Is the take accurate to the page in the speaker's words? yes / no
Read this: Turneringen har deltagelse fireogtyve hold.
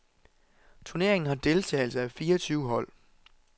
no